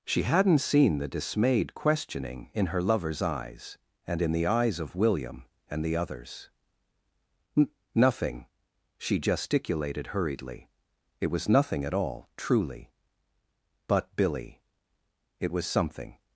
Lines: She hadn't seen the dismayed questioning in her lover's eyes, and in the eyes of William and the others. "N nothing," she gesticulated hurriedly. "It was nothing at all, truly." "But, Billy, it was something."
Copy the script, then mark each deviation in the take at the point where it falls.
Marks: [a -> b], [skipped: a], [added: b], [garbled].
She hadn't seen the dismayed questioning in her lover's eyes, and in the eyes of William and the others. "N nothing," she gesticulated hurriedly. "It was nothing at all, truly." "But, Billy, it was something."